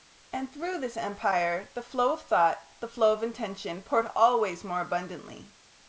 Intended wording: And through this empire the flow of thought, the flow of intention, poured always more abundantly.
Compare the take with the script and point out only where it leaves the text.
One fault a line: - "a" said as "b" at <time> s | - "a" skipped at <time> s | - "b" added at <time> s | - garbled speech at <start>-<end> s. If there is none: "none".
none